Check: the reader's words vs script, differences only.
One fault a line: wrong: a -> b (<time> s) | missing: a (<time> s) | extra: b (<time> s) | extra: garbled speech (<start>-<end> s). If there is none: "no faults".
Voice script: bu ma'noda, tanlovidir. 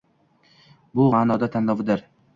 no faults